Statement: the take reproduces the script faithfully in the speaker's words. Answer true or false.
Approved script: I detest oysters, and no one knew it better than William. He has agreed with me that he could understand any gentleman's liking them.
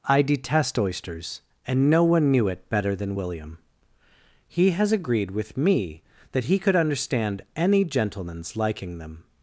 true